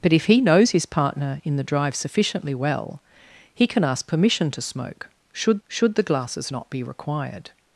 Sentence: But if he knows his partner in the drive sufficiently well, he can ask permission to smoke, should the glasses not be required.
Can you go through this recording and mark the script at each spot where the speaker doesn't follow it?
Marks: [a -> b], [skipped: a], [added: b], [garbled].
But if he knows his partner in the drive sufficiently well, he can ask permission to smoke, should [added: should] the glasses not be required.